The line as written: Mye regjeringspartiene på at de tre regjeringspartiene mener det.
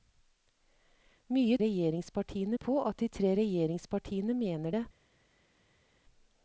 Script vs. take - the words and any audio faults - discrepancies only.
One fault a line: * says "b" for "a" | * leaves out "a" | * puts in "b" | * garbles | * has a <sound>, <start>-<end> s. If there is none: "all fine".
all fine